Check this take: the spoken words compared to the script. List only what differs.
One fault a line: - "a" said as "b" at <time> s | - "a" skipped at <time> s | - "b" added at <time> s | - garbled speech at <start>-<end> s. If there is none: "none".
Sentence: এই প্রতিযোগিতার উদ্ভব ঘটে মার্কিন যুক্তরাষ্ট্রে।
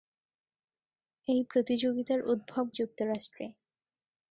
- "ঘটে মার্কিন" skipped at 2.7 s